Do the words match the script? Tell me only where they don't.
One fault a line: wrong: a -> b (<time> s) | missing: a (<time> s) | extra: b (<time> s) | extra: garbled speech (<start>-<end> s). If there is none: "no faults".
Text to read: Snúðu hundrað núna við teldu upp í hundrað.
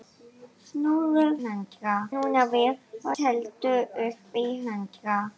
no faults